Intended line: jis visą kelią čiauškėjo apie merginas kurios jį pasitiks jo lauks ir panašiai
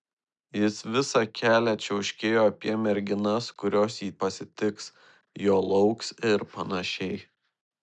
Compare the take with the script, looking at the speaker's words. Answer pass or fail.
pass